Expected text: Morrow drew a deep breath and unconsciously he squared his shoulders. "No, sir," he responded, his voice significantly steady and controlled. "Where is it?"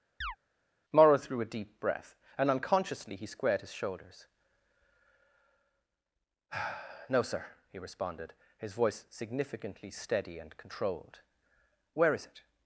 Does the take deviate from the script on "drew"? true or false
true